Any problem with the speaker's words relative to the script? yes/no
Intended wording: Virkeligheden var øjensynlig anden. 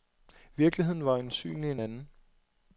yes